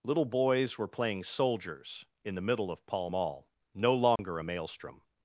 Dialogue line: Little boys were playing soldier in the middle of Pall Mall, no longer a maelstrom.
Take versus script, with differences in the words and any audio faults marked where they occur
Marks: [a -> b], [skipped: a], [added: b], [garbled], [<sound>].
Little boys were playing [soldier -> soldiers] in the middle of Pall Mall, no longer [dropout] a maelstrom.